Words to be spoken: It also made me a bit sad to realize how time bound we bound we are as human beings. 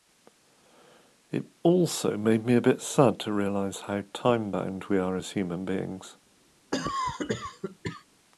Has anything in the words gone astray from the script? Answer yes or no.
yes